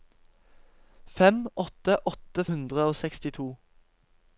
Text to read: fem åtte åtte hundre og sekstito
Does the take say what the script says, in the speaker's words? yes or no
yes